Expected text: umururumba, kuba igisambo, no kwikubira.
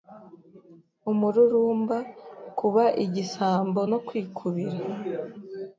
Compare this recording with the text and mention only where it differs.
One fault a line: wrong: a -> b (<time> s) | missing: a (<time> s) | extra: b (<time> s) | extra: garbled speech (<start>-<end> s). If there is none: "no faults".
no faults